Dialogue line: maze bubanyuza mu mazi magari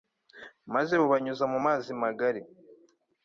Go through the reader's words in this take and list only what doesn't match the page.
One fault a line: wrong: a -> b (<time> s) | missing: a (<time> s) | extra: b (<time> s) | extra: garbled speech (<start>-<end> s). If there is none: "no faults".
no faults